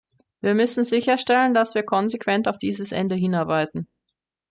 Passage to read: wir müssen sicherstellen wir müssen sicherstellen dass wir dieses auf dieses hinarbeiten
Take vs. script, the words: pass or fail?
fail